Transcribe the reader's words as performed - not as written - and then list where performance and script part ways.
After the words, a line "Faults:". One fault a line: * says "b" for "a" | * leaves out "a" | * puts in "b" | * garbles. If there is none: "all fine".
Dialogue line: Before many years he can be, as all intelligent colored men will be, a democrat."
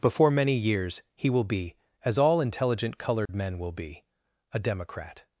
Before many years he will be, as all intelligent colored men will be, a democrat."
Faults:
* says "will" for "can"